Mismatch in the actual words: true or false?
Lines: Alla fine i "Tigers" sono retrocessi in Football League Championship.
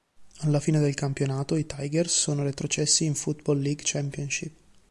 true